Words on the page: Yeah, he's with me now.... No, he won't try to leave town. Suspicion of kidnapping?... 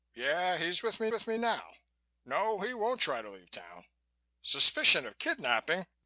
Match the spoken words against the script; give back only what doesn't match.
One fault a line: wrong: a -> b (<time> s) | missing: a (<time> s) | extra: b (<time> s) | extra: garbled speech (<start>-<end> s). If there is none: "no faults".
extra: with me (1.1 s)